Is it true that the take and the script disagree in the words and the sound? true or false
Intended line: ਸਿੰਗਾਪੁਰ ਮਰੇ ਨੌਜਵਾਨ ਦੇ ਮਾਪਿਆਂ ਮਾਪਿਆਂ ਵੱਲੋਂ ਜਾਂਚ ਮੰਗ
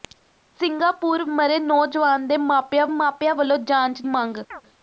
true